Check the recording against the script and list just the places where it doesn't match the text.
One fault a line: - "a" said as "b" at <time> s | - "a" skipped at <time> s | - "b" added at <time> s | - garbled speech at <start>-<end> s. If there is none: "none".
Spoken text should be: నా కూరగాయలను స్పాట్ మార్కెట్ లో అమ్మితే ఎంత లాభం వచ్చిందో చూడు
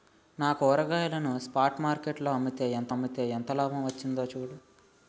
- "అమ్మితే ఎంత" added at 2.9 s